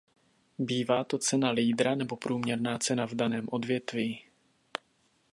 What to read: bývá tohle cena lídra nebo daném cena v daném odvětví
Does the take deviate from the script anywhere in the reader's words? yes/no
yes